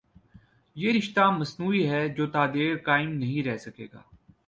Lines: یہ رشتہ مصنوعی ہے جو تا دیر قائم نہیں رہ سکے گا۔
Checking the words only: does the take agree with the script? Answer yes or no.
yes